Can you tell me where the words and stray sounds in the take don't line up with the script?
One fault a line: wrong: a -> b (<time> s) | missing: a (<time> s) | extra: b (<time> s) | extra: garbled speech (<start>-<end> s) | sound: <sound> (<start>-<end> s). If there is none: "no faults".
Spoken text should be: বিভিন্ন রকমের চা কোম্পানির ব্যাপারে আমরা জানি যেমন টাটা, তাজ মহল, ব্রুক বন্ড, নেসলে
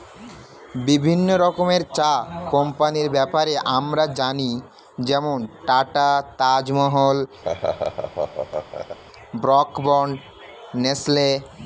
sound: laugh (7.4-9.0 s)